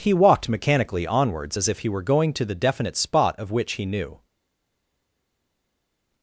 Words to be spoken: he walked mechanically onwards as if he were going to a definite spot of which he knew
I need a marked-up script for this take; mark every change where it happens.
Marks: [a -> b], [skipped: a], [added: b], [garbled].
he walked mechanically onwards as if he were going to [a -> the] definite spot of which he knew